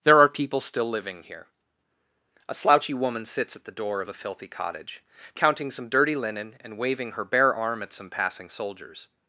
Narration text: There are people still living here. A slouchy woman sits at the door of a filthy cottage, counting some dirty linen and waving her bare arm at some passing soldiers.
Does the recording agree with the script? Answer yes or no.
yes